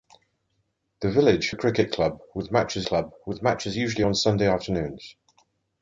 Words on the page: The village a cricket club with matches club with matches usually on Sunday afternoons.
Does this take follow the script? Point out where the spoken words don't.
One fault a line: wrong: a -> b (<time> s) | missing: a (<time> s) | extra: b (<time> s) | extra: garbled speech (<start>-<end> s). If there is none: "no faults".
no faults